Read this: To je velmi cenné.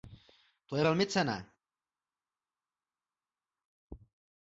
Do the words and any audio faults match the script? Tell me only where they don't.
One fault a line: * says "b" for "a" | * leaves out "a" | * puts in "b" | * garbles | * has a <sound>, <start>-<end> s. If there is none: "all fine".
all fine